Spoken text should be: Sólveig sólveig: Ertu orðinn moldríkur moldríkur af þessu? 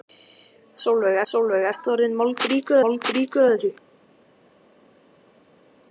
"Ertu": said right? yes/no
yes